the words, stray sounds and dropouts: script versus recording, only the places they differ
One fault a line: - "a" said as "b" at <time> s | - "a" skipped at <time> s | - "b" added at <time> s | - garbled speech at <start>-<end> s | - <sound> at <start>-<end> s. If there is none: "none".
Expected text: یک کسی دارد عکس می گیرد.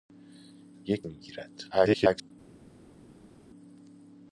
- "کسی دارد عکس" skipped at 1.1 s
- garbled speech at 1.7-2.3 s